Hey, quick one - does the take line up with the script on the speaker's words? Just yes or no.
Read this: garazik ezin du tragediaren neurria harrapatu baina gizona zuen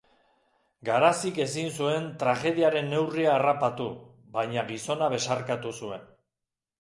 no